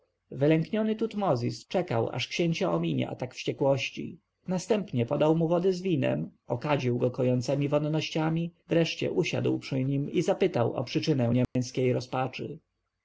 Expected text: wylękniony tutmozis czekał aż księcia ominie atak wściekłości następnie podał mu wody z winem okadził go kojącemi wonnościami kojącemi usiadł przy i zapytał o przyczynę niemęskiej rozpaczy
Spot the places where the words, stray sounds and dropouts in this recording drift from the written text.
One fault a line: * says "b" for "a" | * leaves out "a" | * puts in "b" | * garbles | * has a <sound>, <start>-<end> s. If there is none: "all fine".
* says "wreszcie" for "kojącemi"
* puts in "nim"
* has a dropout, 11.4-11.6 s